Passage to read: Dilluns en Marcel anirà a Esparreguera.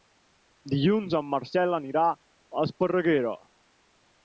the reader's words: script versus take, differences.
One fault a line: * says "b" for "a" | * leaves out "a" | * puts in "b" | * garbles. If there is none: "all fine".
all fine